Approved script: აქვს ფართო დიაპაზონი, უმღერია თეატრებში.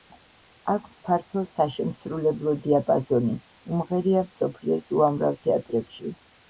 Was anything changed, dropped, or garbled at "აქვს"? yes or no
no